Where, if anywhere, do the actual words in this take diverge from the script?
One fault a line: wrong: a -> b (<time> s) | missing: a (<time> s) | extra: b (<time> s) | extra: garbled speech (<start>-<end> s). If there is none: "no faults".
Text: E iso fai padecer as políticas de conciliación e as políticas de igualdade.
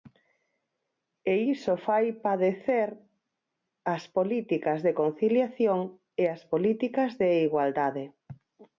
no faults